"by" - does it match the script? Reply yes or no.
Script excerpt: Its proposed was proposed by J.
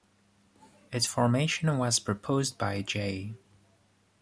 yes